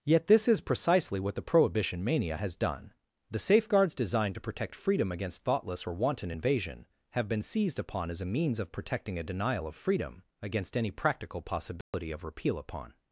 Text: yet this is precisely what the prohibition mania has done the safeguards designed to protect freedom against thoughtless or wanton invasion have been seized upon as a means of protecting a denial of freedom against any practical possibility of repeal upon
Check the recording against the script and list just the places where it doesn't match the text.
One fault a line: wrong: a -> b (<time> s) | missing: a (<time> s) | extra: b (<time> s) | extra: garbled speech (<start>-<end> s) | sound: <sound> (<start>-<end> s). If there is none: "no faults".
sound: dropout (11.8-11.9 s)